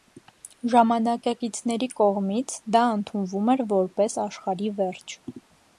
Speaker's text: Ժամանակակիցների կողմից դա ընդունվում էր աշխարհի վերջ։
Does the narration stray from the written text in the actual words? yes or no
yes